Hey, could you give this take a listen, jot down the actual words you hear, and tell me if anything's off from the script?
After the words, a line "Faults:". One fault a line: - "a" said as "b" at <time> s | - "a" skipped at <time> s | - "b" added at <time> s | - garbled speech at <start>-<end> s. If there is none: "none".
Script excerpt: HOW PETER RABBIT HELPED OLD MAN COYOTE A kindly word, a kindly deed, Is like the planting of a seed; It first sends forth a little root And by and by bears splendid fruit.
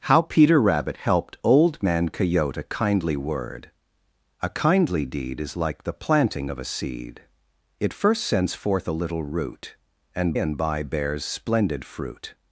HOW PETER RABBIT HELPED OLD MAN COYOTE A kindly word, a kindly deed, Is like the planting of a seed; It first sends forth a little root And and by bears splendid fruit.
Faults:
- "by" skipped at 10.3 s